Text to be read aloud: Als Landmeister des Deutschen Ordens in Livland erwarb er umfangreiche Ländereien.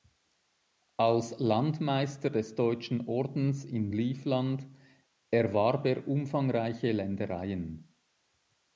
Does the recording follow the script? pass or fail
pass